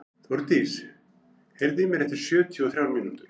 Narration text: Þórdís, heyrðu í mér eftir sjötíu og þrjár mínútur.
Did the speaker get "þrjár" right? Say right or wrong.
right